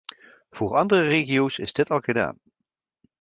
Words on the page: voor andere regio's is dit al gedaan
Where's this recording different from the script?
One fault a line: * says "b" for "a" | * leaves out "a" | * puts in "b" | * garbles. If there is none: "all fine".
all fine